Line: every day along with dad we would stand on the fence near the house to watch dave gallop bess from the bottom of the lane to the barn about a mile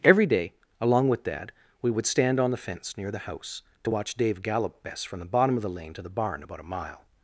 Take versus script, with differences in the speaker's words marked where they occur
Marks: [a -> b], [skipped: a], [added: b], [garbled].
every day along with dad we would stand on the fence near the house to watch dave gallop bess from the bottom of the lane to the barn about a mile